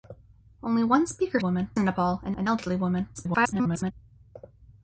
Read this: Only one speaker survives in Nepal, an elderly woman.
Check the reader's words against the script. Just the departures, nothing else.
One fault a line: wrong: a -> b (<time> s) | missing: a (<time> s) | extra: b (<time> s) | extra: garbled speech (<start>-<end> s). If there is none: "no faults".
wrong: survives -> woman (1.4 s)
extra: an (2.4 s)
extra: garbled speech (3.1-3.9 s)